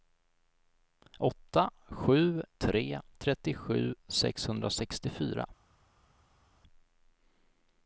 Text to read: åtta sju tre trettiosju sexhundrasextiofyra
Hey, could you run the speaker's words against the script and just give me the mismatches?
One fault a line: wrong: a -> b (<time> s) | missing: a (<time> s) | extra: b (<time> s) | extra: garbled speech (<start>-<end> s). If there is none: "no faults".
no faults